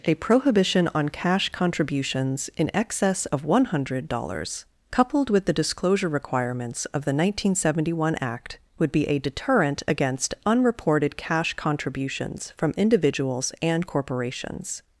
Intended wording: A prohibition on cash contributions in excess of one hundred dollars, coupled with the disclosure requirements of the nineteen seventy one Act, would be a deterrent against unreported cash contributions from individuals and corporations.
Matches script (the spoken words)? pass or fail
pass